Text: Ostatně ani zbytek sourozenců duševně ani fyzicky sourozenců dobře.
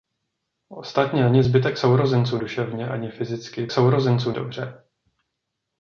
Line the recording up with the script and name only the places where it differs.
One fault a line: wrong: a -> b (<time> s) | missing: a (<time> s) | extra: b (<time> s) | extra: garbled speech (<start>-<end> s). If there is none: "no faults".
no faults